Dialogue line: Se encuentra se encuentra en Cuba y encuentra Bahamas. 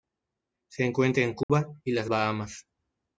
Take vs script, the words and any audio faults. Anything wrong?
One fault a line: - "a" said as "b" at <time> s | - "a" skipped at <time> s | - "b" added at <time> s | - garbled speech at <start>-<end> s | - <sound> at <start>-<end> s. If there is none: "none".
- "se encuentra" skipped at 1.2 s
- dropout at 1.4-1.5 s
- "encuentra" said as "las" at 1.9 s